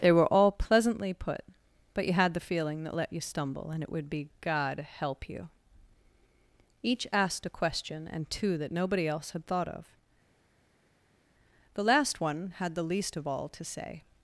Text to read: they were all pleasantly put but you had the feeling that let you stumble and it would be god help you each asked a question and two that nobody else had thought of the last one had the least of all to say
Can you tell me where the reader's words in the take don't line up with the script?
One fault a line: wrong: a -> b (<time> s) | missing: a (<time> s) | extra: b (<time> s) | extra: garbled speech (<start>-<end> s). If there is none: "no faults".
no faults